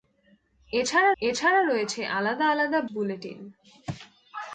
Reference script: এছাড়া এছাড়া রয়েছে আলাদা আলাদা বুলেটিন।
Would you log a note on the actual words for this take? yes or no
no